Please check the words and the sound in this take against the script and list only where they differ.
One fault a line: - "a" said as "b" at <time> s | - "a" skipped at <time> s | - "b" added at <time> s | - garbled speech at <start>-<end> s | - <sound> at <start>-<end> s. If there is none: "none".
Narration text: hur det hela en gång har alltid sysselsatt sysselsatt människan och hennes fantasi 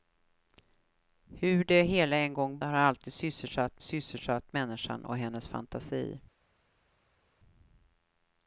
none